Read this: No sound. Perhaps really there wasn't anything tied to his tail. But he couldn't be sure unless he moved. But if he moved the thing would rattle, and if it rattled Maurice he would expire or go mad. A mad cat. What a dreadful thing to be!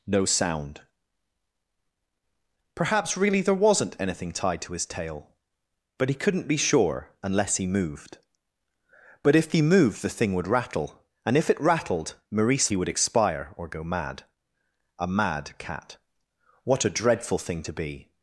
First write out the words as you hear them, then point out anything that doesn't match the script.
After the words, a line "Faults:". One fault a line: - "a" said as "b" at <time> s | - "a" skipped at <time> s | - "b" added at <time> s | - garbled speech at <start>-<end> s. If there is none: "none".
No sound. Perhaps really there wasn't anything tied to his tail. But he couldn't be sure unless he moved. But if he moved the thing would rattle, and if it rattled Maurice he would expire or go mad. A mad cat. What a dreadful thing to be!
Faults:
none